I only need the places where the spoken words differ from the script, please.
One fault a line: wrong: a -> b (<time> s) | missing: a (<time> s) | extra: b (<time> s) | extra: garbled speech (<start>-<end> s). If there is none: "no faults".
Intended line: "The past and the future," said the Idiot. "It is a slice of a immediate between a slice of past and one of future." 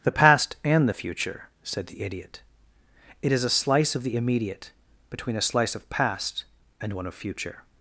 wrong: a -> the (4.0 s)